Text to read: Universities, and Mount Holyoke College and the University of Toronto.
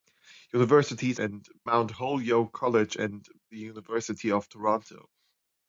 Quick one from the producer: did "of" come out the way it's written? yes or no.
yes